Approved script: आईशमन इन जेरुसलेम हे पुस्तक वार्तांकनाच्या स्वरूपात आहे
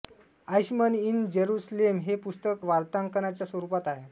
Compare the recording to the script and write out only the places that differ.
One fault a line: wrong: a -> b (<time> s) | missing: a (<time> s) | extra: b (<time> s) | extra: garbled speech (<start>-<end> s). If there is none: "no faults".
no faults